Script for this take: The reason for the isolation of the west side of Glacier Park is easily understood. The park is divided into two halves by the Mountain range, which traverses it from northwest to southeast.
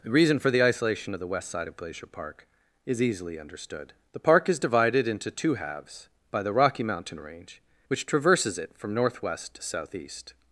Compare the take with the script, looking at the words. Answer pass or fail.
fail